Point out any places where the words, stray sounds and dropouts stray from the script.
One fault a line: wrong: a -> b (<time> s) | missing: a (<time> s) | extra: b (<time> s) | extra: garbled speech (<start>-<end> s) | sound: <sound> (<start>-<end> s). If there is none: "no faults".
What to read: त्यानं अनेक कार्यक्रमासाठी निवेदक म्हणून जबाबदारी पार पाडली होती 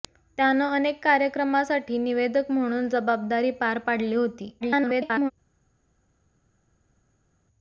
extra: garbled speech (4.6-5.3 s)